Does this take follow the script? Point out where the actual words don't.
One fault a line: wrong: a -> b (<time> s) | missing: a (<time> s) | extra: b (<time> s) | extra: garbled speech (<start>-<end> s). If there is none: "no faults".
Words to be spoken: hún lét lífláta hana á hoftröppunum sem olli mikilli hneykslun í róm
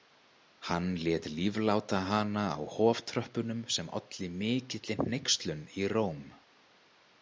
wrong: hún -> hann (0.7 s)